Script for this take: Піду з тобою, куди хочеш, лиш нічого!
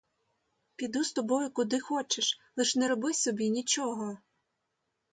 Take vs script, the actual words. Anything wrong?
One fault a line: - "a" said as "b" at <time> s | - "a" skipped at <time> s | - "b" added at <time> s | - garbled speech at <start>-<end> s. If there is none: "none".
- "не роби собі" added at 2.7 s